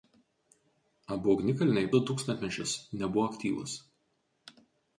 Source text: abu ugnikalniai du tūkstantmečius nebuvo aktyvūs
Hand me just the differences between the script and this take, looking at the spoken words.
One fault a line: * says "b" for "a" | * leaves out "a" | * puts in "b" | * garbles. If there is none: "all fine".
all fine